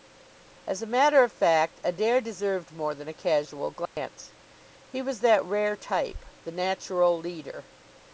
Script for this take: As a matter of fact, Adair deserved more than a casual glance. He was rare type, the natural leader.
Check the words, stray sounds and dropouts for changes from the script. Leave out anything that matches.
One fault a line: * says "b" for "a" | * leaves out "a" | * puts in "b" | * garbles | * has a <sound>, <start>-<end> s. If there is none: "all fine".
* has a dropout, 3.9-4.0 s
* puts in "that"